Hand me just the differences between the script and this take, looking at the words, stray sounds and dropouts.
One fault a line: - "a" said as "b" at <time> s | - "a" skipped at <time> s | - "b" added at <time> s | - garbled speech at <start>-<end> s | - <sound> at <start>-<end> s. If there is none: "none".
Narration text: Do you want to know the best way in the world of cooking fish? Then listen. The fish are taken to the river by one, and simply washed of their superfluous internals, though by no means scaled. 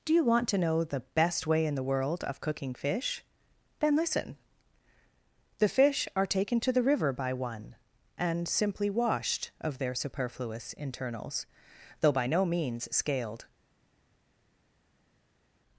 none